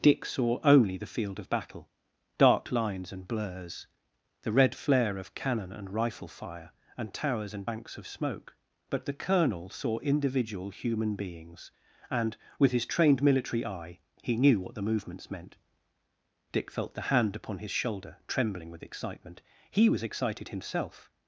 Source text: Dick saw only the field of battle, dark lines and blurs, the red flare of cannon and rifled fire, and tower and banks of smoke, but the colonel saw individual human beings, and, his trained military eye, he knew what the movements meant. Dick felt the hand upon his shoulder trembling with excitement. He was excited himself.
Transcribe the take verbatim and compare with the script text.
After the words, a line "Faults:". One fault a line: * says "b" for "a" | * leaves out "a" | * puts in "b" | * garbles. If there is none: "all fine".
Dick saw only the field of battle, dark lines and blurs, the red flare of cannon and rifle fire, and towers and banks of smoke, but the colonel saw individual human beings, and, with his trained military eye, he knew what the movements meant. Dick felt the hand upon his shoulder trembling with excitement. He was excited himself.
Faults:
* says "rifle" for "rifled"
* says "towers" for "tower"
* puts in "with"